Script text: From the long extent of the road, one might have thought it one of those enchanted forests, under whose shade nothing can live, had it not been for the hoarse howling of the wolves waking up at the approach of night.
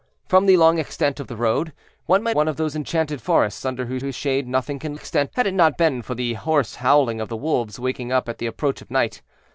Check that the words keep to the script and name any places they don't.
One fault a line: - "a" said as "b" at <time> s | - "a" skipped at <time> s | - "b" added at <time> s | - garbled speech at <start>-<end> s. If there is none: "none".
- "have thought it" skipped at 2.4 s
- "whose" added at 4.0 s
- "live" said as "extent" at 4.9 s